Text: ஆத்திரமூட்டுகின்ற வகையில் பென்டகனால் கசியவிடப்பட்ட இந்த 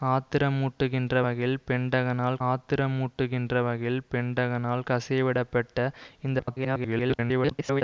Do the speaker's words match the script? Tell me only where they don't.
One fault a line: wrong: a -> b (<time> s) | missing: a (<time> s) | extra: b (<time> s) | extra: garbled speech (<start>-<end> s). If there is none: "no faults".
extra: ஆத்திரமூட்டுகின்ற வகையில் பென்டகனால் (2.5 s)
extra: garbled speech (6.4-7.8 s)